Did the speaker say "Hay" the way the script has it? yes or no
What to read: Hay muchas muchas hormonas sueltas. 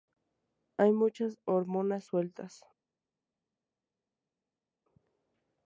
yes